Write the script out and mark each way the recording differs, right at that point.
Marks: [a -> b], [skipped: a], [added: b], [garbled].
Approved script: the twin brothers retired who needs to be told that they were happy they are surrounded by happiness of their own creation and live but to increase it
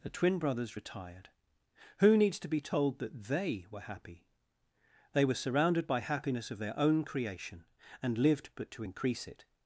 the twin brothers retired who needs to be told that they were happy they [are -> were] surrounded by happiness of their own creation and [live -> lived] but to increase it